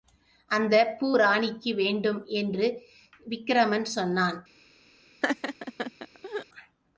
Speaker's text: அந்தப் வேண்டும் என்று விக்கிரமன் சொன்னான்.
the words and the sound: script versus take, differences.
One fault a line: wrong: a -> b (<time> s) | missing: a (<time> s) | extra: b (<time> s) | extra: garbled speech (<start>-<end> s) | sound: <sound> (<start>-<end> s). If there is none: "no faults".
extra: பூ ராணிக்கு (1.0 s)
sound: laugh (5.2-6.5 s)